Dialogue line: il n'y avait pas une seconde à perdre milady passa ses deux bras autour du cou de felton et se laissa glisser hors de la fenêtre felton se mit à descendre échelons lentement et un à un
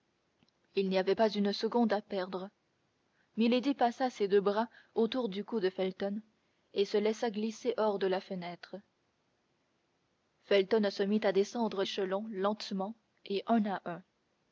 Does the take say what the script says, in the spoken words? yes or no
yes